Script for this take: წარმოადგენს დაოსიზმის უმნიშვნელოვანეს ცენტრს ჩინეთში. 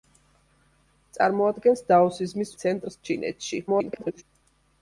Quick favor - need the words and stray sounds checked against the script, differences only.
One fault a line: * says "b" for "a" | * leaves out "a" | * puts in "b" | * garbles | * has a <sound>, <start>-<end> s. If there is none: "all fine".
* leaves out "უმნიშვნელოვანეს"
* garbles